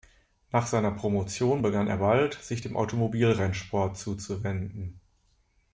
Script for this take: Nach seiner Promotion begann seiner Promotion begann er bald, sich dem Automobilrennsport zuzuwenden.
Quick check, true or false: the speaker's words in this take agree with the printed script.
false